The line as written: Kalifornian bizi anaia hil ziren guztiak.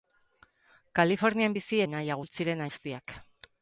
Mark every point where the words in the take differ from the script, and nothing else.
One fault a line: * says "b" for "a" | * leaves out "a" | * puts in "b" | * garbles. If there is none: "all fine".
all fine